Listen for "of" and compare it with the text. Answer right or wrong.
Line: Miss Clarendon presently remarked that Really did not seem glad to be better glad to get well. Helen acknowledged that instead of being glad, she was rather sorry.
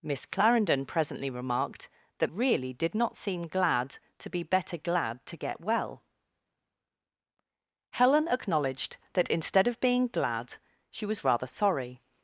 right